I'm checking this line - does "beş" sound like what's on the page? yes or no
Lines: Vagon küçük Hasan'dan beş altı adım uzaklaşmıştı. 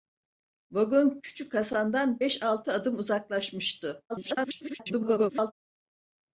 yes